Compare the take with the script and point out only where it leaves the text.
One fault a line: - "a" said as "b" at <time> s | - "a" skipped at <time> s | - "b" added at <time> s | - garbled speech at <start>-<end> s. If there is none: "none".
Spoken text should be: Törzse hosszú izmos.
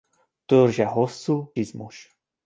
none